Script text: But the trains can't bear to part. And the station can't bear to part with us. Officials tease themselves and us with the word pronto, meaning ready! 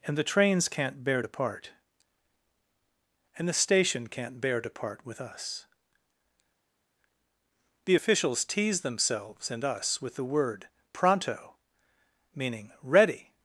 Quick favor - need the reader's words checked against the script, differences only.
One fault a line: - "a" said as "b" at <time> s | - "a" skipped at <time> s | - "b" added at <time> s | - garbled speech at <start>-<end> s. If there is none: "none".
- "But" said as "And" at 0.0 s
- "The" added at 7.9 s